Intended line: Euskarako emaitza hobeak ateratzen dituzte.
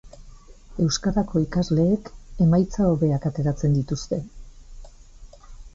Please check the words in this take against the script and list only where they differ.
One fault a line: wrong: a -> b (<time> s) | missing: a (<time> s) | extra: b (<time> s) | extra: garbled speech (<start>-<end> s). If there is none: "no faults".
extra: ikasleek (1.4 s)